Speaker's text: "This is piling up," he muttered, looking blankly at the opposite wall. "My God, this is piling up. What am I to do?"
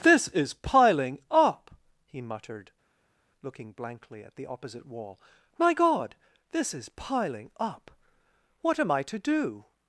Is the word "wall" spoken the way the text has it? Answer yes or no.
yes